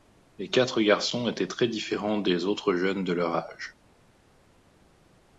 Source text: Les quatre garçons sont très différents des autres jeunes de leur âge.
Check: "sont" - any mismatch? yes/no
yes